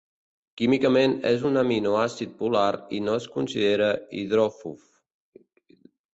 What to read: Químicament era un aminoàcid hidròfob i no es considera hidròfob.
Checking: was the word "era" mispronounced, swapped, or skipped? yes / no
yes